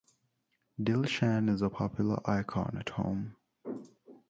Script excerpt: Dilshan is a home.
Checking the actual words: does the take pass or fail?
fail